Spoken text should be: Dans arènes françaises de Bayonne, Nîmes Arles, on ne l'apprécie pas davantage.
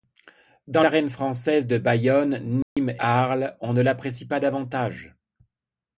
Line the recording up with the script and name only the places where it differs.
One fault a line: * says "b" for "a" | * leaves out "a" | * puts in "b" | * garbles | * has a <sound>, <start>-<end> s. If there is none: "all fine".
* has a dropout, 2.6-2.8 s